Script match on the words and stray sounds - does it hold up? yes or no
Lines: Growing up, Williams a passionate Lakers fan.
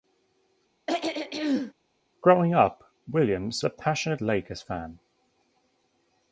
no